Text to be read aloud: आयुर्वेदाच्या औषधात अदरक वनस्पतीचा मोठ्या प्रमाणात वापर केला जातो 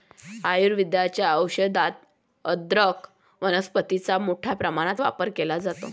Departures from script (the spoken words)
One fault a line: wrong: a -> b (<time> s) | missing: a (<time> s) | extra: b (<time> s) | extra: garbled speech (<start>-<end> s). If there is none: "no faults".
no faults